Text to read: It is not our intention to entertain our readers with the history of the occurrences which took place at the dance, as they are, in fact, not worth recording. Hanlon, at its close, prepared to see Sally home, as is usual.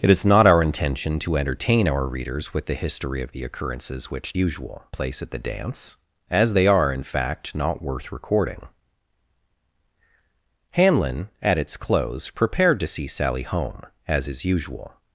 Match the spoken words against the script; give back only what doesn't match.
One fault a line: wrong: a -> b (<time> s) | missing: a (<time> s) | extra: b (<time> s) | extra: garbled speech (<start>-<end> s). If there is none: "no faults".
wrong: took -> usual (4.3 s)